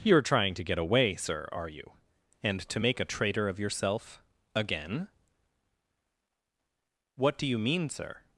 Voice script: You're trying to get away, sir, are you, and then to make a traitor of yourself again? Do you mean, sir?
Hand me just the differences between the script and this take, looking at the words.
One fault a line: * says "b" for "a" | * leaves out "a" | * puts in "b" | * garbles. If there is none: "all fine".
* leaves out "then"
* puts in "What"